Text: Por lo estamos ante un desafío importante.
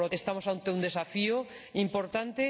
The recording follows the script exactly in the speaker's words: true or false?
true